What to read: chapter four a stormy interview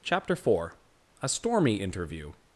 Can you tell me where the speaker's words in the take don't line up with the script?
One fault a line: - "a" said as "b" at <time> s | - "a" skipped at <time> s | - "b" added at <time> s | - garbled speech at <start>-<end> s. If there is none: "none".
none